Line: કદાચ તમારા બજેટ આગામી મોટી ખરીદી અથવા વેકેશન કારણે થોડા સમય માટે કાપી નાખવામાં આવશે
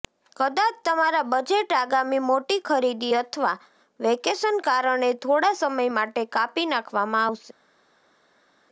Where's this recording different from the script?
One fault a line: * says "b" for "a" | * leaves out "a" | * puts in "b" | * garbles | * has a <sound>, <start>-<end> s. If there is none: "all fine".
all fine